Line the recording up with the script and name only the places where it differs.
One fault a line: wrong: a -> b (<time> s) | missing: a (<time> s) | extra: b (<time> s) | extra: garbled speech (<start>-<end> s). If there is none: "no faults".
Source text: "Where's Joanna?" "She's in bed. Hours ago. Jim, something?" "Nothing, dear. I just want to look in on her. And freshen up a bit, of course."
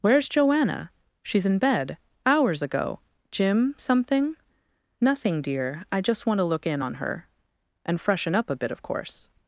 no faults